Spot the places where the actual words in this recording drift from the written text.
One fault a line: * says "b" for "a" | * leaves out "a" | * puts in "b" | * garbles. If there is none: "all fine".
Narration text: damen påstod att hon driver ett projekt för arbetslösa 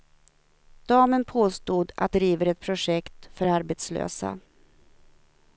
* leaves out "hon"